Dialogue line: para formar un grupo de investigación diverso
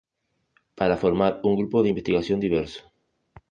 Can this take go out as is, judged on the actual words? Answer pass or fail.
pass